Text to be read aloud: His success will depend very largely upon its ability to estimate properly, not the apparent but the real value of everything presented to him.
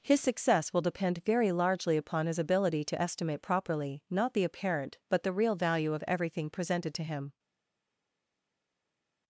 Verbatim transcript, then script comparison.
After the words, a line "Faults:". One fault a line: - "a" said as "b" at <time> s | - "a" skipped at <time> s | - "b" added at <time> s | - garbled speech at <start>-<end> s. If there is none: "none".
His success will depend very largely upon his ability to estimate properly, not the apparent but the real value of everything presented to him.
Faults:
- "its" said as "his" at 2.2 s